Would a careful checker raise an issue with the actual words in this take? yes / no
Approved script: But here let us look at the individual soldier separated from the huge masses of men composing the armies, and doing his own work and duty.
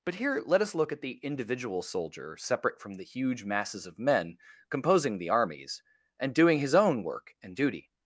yes